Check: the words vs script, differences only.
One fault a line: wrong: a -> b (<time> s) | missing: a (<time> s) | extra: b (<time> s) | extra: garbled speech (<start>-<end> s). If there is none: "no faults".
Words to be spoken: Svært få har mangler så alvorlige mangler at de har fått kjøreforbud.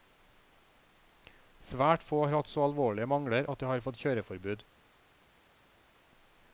wrong: mangler -> hatt (2.4 s)